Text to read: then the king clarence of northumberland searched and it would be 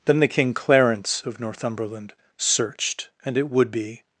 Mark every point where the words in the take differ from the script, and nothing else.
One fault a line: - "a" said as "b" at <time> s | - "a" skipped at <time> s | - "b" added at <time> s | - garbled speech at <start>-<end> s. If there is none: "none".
none